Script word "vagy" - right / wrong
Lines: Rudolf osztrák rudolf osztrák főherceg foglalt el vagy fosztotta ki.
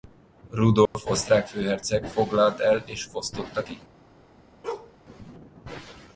wrong